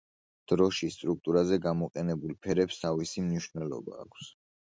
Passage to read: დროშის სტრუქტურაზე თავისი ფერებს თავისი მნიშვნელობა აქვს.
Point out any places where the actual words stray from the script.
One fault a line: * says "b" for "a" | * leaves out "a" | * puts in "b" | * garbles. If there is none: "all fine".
* says "გამოყენებულ" for "თავისი"